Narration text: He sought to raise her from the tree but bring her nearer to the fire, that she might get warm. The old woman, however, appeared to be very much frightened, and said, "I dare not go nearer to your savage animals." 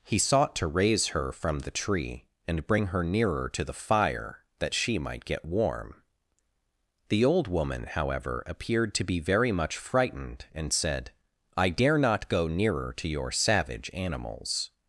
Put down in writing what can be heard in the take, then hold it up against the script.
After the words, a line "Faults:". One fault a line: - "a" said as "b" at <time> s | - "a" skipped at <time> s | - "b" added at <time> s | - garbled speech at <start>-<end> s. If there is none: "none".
He sought to raise her from the tree and bring her nearer to the fire, that she might get warm. The old woman, however, appeared to be very much frightened, and said, "I dare not go nearer to your savage animals."
Faults:
- "but" said as "and" at 2.5 s